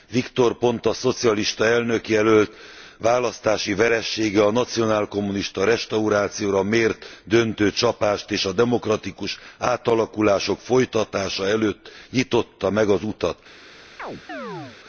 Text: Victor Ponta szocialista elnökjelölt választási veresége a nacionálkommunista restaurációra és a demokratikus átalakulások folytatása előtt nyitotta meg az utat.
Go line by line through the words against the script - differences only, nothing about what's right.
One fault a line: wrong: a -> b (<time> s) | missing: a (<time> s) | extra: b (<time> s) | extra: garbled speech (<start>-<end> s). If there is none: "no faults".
extra: mért döntő csapást (6.6 s)